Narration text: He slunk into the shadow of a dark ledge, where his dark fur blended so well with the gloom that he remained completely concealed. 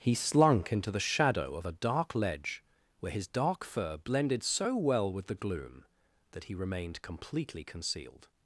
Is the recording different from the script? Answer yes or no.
no